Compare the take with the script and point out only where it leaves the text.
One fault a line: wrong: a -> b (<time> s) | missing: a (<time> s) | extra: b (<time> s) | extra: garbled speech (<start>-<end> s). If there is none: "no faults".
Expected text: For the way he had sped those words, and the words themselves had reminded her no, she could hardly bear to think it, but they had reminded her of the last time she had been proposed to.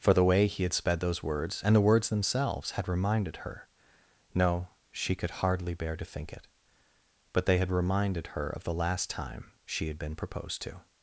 no faults